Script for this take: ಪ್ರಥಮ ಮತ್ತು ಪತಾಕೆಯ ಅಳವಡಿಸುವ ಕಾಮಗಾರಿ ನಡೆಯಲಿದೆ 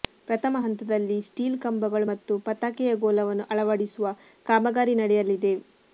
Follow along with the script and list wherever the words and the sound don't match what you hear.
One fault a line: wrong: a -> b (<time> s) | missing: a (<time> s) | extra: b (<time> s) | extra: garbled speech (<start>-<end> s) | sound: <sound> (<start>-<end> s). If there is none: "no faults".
extra: ಹಂತದಲ್ಲಿ ಸ್ಟೀಲ್ ಕಂಬಗಳು (0.6 s)
extra: ಗೋಲವನ್ನು (3.0 s)